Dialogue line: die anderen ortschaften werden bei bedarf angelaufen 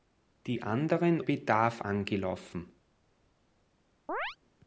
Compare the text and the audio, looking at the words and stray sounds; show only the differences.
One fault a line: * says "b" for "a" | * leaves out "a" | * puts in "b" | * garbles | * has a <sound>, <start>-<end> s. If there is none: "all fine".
* leaves out "ortschaften werden bei"
* has a chirp, 4.1-4.4 s